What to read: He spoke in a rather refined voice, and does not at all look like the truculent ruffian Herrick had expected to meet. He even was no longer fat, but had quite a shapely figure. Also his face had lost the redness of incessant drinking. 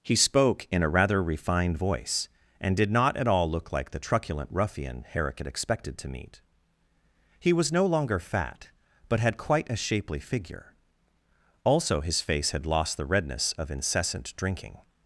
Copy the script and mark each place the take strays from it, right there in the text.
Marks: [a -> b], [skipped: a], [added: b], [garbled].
He spoke in a rather refined voice, and [does -> did] not at all look like the truculent ruffian Herrick had expected to meet. He [skipped: even] was no longer fat, but had quite a shapely figure. Also his face had lost the redness of incessant drinking.